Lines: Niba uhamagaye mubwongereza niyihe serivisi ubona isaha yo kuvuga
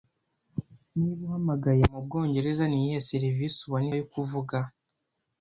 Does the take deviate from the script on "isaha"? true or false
true